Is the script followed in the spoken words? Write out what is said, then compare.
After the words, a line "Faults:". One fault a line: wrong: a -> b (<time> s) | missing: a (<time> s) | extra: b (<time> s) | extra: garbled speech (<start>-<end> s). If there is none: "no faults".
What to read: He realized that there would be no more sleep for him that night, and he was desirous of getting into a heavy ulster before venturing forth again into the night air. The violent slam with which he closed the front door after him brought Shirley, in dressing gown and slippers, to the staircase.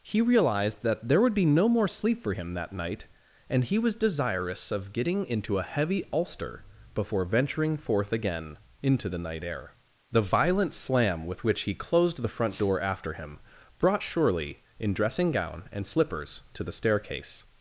He realized that there would be no more sleep for him that night, and he was desirous of getting into a heavy ulster before venturing forth again into the night air. The violent slam with which he closed the front door after him brought Shirley, in dressing gown and slippers, to the staircase.
Faults:
no faults